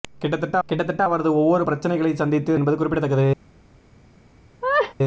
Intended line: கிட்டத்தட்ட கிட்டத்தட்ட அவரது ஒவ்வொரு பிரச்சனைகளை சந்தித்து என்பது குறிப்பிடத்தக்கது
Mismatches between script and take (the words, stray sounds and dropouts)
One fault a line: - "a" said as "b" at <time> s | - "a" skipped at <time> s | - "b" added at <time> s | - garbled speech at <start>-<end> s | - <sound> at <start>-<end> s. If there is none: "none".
- laugh at 4.6-4.9 s